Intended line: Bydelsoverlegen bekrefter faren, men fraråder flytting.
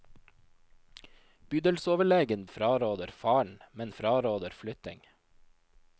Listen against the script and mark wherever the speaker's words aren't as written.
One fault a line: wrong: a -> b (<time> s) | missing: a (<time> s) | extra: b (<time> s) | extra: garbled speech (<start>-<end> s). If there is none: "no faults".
wrong: bekrefter -> fraråder (2.5 s)